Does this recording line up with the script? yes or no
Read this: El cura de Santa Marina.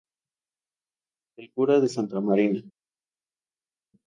yes